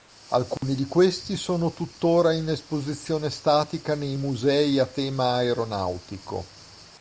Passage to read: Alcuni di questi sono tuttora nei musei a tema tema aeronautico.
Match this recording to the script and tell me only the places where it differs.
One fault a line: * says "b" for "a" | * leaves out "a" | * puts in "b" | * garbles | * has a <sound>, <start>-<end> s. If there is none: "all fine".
* has a dropout, 0.6-0.6 s
* puts in "in esposizione statica"
* leaves out "tema"